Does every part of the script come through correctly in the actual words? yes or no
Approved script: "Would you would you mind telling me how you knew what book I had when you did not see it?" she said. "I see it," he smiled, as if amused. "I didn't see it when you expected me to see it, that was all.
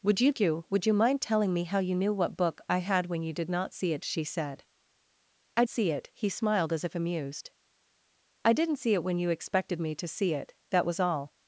yes